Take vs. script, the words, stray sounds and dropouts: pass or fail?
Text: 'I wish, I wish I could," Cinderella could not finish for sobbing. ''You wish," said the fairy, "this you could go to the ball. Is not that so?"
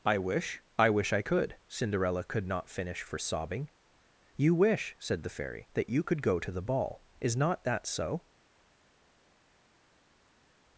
fail